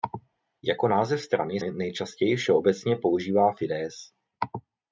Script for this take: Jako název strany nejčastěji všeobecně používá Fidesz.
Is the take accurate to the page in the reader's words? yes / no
yes